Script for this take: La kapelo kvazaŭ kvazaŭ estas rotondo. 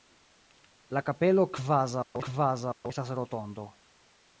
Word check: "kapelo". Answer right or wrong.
right